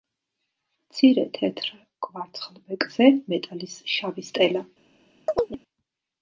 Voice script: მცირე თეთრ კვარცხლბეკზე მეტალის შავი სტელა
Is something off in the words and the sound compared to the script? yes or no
yes